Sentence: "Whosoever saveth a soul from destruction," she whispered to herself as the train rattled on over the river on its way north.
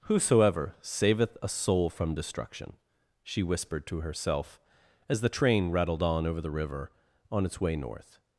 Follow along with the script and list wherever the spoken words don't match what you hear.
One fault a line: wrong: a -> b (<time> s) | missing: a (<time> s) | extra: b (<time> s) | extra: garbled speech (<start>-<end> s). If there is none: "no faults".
no faults